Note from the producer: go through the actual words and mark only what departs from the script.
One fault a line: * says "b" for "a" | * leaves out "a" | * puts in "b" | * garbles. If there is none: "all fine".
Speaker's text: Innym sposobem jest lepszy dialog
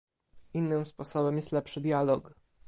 all fine